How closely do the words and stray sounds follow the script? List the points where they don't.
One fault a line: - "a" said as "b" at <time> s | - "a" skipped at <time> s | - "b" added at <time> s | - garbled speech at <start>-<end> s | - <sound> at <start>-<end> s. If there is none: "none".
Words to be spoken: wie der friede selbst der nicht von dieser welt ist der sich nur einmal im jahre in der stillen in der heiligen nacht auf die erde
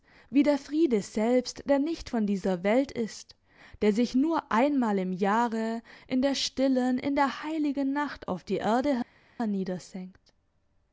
none